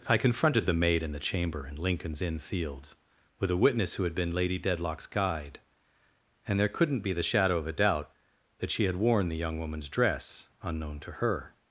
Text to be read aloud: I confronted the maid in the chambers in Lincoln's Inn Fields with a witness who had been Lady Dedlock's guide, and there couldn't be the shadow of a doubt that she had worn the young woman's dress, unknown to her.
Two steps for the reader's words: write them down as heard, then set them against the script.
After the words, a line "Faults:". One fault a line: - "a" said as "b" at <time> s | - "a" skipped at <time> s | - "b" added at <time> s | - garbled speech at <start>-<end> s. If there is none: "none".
I confronted the maid in the chamber in Lincoln's Inn Fields with a witness who had been Lady Dedlock's guide, and there couldn't be the shadow of a doubt that she had worn the young woman's dress, unknown to her.
Faults:
- "chambers" said as "chamber" at 1.2 s